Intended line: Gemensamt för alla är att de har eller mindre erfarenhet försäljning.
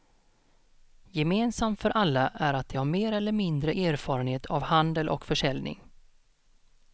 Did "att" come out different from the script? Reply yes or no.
no